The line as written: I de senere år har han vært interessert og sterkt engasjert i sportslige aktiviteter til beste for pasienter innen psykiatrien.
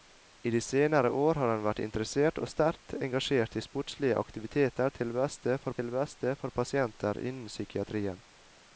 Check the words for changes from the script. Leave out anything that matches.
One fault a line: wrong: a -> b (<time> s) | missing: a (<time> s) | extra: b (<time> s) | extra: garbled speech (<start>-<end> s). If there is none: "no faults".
extra: til beste for (5.8 s)